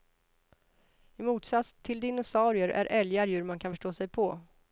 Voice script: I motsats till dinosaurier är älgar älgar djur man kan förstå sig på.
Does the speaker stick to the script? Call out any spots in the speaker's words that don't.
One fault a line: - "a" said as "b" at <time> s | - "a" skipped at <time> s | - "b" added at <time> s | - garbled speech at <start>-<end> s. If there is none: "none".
- "älgar" skipped at 3.3 s